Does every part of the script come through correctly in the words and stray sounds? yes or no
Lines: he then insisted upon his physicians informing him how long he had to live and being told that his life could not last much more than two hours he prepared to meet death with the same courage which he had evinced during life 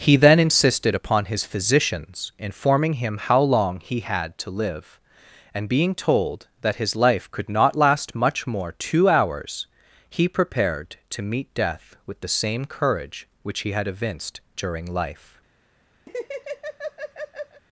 no